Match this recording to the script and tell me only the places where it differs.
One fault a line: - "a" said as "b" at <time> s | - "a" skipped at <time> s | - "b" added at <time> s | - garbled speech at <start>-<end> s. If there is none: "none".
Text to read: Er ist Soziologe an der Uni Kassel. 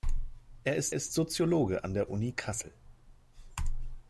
- "ist" added at 0.9 s